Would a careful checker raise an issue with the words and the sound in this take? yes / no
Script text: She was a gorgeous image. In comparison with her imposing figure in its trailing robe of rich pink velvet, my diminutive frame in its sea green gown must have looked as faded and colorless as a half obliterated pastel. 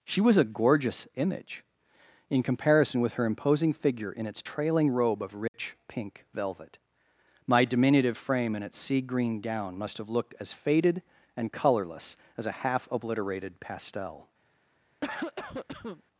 yes